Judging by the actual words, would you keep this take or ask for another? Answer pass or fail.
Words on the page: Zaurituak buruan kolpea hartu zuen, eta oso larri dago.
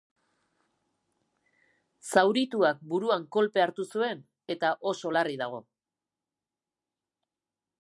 pass